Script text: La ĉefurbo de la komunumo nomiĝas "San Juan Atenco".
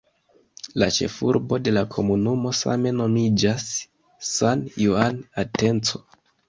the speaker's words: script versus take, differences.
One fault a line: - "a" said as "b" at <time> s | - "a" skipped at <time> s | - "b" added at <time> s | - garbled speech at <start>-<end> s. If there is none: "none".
- "same" added at 2.6 s